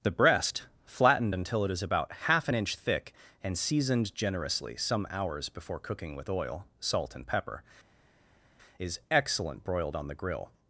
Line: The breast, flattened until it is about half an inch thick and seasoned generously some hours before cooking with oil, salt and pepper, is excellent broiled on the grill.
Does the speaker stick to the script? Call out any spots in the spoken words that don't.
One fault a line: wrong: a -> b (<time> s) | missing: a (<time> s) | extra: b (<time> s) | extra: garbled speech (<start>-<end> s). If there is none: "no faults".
no faults